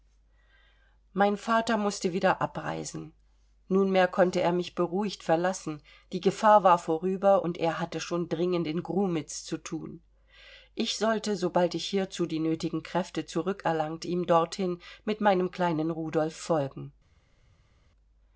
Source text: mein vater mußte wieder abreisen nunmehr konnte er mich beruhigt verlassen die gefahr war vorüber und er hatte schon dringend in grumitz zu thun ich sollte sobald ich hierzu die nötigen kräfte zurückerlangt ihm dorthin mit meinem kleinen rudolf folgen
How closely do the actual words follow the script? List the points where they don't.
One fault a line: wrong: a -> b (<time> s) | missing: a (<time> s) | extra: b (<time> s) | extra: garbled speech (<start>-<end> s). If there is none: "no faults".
no faults